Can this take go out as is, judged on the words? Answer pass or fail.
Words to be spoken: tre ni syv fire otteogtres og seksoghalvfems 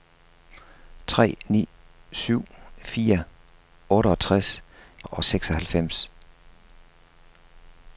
pass